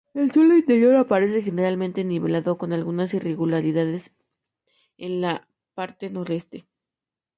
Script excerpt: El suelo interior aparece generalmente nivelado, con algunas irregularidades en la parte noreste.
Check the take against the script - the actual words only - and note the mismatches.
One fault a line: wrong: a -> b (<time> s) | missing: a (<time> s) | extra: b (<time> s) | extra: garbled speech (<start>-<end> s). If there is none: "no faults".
no faults